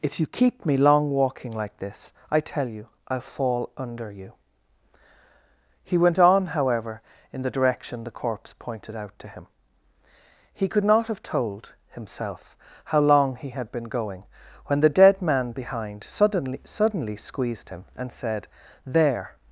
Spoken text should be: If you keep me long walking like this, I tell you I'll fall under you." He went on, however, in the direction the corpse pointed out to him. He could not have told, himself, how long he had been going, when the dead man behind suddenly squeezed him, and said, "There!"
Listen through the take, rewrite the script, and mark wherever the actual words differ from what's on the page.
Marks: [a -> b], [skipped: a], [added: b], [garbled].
If you keep me long walking like this, I tell you I'll fall under you." He went on, however, in the direction the corpse pointed out to him. He could not have told, himself, how long he had been going, when the dead man behind suddenly [added: suddenly] squeezed him, and said, "There!"